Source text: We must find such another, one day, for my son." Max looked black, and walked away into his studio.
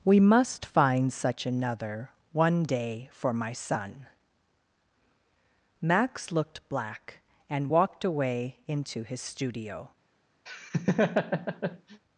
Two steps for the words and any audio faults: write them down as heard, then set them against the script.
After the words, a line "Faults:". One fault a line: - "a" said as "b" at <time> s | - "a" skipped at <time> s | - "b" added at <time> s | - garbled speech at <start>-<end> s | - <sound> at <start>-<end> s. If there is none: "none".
We must find such another, one day, for my son." Max looked black, and walked away into his studio.
Faults:
- laugh at 10.5-12.0 s